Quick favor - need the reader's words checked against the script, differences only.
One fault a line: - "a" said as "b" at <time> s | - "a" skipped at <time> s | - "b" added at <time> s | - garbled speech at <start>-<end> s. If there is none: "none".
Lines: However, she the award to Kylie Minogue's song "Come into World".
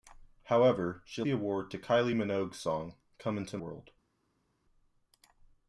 none